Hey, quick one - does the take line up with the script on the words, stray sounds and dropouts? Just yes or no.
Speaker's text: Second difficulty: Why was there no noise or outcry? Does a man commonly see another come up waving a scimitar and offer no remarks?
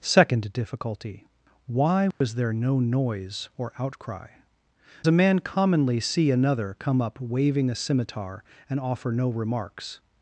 no